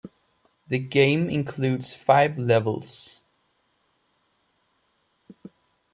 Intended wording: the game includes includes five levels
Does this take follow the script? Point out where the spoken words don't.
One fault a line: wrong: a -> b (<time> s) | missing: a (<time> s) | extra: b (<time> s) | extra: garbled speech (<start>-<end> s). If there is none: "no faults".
missing: includes (1.9 s)